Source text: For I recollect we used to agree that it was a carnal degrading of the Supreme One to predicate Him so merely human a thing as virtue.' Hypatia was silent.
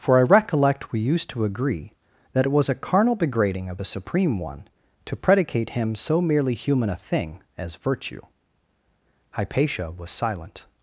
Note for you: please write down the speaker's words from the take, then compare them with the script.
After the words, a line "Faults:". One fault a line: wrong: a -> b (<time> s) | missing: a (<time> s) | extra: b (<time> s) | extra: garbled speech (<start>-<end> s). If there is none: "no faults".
For I recollect we used to agree that it was a carnal degrading of the Supreme One to predicate Him so merely human a thing as virtue.' Hypatia was silent.
Faults:
no faults